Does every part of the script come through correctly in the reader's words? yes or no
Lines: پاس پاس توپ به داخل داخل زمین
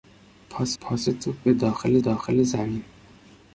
yes